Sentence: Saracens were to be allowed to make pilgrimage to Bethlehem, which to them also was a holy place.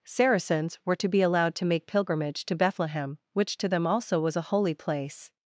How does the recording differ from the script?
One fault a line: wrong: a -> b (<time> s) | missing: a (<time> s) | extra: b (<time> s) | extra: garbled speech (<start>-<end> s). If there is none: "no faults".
no faults